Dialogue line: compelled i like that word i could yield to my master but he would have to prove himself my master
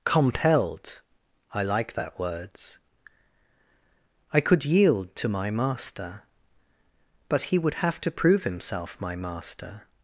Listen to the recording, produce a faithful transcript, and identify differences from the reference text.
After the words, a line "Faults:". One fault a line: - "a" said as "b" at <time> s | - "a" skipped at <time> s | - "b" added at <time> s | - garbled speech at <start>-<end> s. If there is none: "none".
compelled i like that words i could yield to my master but he would have to prove himself my master
Faults:
- "word" said as "words" at 2.2 s